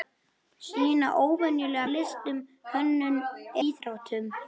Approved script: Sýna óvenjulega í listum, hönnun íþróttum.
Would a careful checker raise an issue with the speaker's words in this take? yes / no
no